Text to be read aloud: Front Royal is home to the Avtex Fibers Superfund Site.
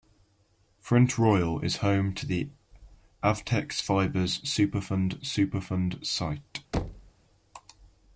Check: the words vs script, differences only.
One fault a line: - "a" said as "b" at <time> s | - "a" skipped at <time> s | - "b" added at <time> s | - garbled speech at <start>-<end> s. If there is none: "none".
- "Superfund" added at 5.2 s